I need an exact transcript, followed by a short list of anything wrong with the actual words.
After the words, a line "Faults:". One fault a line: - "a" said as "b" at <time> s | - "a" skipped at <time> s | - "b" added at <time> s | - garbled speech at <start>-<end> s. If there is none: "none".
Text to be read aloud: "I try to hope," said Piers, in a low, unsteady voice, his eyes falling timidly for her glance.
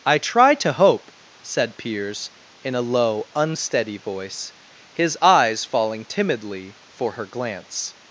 "I try to hope," said Piers, in a low, unsteady voice, his eyes falling timidly for her glance.
Faults:
none